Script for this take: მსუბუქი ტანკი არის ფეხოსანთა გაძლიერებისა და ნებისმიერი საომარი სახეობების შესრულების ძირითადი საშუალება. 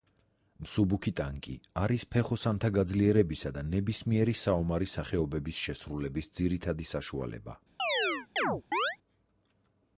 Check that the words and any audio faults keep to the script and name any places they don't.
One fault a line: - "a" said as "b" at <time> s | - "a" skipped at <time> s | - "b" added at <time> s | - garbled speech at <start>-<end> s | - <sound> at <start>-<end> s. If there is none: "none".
- chirp at 7.8-9.0 s